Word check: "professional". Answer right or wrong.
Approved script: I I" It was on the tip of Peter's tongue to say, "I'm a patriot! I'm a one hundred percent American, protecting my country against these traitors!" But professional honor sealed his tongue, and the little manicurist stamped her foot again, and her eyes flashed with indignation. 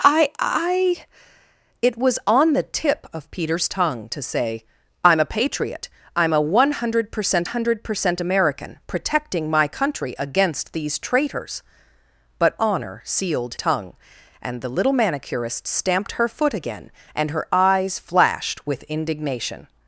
wrong